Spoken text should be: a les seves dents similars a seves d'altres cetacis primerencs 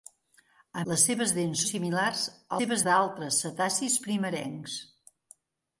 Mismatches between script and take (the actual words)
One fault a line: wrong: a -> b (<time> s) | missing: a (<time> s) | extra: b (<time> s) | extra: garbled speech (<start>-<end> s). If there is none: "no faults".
no faults